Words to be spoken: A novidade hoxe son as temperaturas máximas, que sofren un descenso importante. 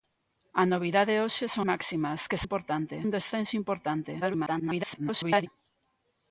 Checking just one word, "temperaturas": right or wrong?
wrong